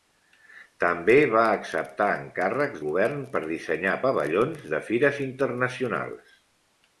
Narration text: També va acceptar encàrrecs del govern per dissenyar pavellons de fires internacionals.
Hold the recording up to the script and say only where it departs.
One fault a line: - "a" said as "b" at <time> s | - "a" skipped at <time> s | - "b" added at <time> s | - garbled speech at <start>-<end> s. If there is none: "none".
- "del" skipped at 2.8 s